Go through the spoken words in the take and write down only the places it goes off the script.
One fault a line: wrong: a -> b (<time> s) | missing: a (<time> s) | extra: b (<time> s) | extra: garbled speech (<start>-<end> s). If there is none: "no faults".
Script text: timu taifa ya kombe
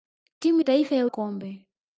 no faults